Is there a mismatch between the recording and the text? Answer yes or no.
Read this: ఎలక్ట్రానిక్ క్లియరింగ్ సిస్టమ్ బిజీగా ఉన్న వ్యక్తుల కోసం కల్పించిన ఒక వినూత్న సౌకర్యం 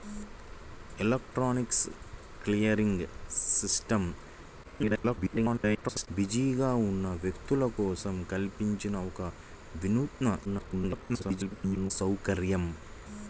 yes